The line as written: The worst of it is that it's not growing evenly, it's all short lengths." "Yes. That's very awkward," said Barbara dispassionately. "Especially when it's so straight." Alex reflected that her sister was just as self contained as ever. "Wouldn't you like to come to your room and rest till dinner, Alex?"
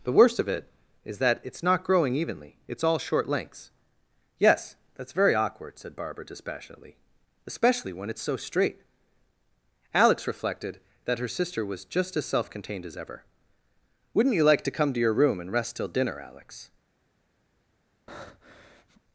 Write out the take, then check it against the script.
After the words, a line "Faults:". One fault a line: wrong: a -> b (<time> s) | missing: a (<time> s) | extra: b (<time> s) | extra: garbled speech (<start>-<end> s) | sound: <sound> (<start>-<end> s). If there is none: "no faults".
The worst of it is that it's not growing evenly, it's all short lengths." "Yes. That's very awkward," said Barbara dispassionately. "Especially when it's so straight." Alex reflected that her sister was just as self contained as ever. "Wouldn't you like to come to your room and rest till dinner, Alex?"
Faults:
sound: breath (18.1-19.0 s)